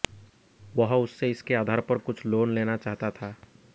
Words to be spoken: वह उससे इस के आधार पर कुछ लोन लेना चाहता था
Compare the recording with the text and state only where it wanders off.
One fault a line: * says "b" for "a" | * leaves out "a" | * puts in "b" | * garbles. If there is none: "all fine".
all fine